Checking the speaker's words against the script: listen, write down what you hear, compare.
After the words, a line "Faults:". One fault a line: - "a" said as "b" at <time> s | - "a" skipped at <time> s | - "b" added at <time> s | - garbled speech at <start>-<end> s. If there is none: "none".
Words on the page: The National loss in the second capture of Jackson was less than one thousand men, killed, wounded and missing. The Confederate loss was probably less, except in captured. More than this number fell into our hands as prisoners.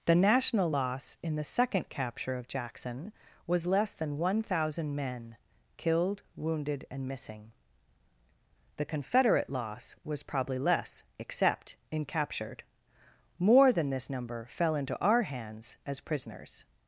The National loss in the second capture of Jackson was less than one thousand men, killed, wounded and missing. The Confederate loss was probably less, except in captured. More than this number fell into our hands as prisoners.
Faults:
none